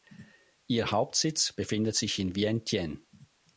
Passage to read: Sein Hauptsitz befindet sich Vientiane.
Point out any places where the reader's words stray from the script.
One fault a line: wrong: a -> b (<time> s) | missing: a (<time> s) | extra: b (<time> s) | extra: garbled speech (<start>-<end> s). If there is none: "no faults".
wrong: Sein -> Ihr (0.7 s)
extra: in (2.2 s)